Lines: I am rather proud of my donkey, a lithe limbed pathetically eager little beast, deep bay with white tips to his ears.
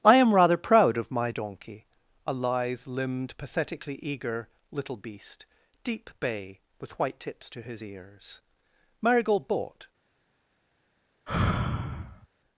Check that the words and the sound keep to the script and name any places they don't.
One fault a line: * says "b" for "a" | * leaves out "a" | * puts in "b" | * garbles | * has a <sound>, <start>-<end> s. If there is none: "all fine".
* puts in "Marigold bought"
* has a sigh, 11.3-12.3 s